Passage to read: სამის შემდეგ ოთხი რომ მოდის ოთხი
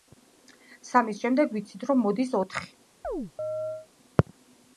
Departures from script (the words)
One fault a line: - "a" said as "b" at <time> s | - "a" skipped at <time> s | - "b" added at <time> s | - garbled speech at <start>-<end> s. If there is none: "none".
- "ოთხი" said as "ვიცით" at 1.6 s